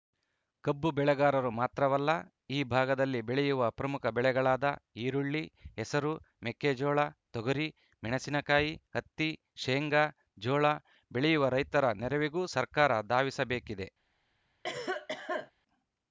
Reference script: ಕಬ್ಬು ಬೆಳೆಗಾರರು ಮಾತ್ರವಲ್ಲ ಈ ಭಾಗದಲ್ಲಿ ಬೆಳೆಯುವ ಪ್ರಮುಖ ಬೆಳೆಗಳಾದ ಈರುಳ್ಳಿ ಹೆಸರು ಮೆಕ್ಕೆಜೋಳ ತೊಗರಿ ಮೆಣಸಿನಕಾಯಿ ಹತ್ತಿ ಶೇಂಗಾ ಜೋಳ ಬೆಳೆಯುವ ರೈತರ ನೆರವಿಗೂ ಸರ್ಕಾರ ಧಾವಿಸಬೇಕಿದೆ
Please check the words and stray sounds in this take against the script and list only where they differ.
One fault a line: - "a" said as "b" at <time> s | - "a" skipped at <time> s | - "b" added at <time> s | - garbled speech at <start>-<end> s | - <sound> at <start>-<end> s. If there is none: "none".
- cough at 14.6-15.5 s